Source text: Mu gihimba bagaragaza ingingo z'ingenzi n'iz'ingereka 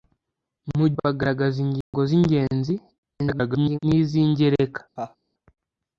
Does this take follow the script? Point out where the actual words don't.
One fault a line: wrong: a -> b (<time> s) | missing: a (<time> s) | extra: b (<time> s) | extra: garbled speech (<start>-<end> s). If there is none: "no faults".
missing: gihimba (0.9 s)
extra: garbled speech (3.2-3.8 s)